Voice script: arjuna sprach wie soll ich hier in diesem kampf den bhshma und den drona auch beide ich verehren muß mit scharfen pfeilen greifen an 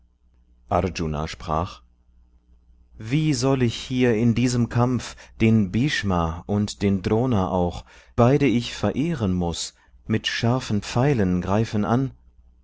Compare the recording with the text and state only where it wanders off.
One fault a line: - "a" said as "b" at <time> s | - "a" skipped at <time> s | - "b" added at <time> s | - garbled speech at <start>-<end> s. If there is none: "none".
none